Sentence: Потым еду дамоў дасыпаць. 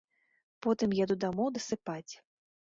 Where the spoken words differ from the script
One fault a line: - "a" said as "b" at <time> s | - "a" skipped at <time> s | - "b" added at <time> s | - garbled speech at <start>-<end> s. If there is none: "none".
none